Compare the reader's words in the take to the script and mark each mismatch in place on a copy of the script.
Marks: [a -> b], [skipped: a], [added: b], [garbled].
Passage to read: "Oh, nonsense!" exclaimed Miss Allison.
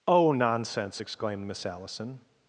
"Oh, nonsense!" exclaimed Miss Allison.